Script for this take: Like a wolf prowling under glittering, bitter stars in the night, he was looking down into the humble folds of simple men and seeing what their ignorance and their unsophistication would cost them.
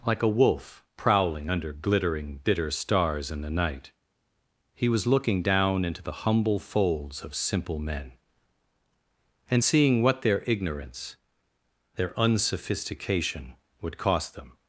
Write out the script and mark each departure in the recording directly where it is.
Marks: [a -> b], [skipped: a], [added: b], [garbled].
Like a wolf prowling under glittering, bitter stars in the night, he was looking down into the humble folds of simple men and seeing what their ignorance [skipped: and] their unsophistication would cost them.